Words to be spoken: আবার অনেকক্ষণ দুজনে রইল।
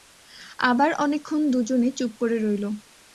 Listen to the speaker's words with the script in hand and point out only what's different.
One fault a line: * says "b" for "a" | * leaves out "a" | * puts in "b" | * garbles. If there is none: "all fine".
* puts in "চুপ করে"